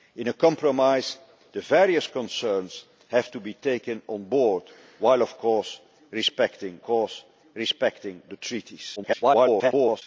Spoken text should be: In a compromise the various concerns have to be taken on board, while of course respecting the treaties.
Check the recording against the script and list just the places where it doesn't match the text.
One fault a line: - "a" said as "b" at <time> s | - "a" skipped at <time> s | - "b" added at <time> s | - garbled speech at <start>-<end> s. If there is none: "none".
- "course respecting" added at 6.8 s
- garbled speech at 9.0-10.0 s